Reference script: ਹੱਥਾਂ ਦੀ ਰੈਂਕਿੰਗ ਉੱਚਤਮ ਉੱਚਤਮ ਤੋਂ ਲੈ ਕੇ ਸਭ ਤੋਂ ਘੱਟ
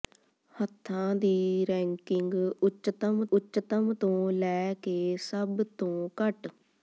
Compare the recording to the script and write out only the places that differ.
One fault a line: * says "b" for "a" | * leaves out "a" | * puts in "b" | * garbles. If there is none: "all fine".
all fine